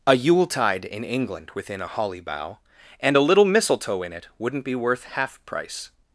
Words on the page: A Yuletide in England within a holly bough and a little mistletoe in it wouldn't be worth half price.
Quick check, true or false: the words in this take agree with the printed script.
true